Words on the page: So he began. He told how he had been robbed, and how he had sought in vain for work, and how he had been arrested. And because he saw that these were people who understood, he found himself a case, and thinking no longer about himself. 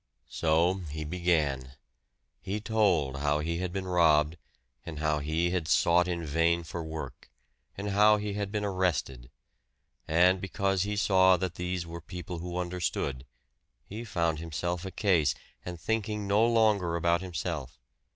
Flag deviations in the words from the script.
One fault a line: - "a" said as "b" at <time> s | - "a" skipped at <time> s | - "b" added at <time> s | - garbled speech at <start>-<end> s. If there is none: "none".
none